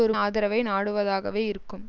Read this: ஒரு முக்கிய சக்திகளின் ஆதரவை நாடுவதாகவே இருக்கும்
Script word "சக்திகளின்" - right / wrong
wrong